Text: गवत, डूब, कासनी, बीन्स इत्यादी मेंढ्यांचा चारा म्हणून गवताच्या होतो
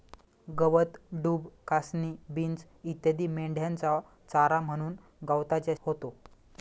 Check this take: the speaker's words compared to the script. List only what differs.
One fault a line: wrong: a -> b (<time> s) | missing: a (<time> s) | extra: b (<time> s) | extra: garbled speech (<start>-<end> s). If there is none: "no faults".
no faults